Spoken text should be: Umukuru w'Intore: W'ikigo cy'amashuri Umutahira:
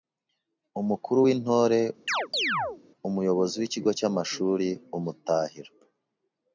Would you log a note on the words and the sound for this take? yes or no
yes